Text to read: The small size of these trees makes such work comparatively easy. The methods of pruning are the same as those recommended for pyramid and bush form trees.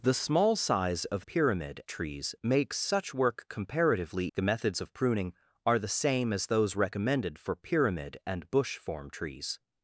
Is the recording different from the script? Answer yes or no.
yes